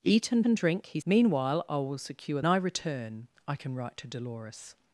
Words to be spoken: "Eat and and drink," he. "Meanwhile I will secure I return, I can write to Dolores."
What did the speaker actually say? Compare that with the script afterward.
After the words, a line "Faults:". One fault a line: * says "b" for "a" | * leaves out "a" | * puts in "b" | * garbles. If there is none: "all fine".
"Eat and and drink," he. "Meanwhile I will secure I return, I can write to Dolores."
Faults:
all fine